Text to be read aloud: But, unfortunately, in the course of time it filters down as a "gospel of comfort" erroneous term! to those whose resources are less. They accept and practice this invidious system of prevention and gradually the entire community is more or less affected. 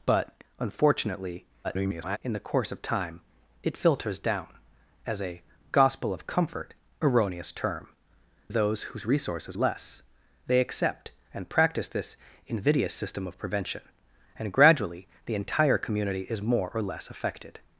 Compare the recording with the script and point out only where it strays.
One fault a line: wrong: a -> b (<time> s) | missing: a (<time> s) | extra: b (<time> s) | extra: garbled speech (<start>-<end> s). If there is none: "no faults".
extra: garbled speech (1.6-2.2 s)
missing: to (7.9 s)
missing: are (9.6 s)